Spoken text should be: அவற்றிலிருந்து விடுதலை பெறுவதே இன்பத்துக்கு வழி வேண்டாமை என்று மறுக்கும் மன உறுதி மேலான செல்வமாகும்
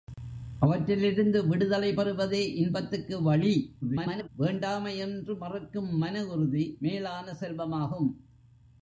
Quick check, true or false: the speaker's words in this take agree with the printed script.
false